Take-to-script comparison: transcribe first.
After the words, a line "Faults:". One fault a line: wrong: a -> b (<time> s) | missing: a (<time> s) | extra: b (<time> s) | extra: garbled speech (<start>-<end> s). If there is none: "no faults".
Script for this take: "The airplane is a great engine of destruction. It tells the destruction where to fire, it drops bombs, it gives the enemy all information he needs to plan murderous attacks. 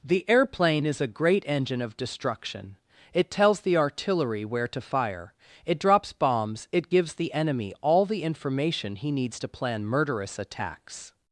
"The airplane is a great engine of destruction. It tells the artillery where to fire, it drops bombs, it gives the enemy all the information he needs to plan murderous attacks.
Faults:
wrong: destruction -> artillery (3.8 s)
extra: the (8.1 s)